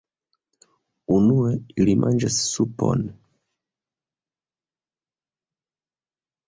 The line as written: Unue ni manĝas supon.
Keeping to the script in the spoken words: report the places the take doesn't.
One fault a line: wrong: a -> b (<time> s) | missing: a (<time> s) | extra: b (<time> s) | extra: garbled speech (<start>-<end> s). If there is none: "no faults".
wrong: ni -> ili (1.8 s)